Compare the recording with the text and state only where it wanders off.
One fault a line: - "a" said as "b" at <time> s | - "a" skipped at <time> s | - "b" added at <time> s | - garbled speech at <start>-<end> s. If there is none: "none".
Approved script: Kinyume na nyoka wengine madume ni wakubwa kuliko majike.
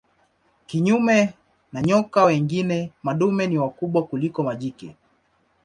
none